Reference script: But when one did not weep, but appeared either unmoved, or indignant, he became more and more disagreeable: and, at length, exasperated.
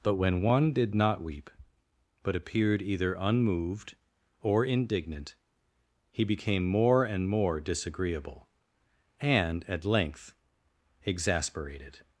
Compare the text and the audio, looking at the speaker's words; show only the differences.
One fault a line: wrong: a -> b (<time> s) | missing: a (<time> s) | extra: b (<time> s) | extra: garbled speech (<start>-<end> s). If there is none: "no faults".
no faults